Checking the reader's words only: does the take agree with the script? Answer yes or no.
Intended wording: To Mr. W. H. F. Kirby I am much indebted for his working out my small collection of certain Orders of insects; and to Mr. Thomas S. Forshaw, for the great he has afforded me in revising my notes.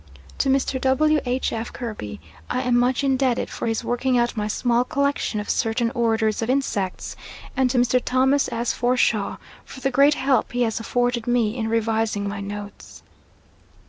no